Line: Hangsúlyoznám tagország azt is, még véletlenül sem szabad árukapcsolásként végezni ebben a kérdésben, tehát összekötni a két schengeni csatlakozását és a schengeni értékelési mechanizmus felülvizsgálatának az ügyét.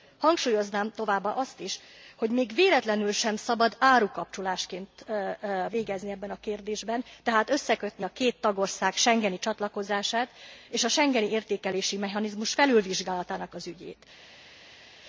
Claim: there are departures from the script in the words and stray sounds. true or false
true